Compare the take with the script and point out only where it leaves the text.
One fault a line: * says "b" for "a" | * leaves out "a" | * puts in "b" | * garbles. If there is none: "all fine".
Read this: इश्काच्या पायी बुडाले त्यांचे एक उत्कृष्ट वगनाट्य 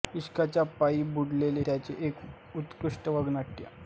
all fine